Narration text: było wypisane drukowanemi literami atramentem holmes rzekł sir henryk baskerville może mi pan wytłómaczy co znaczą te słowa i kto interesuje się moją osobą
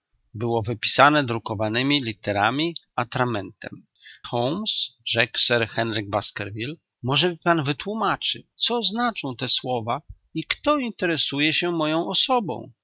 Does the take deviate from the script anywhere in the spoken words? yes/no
no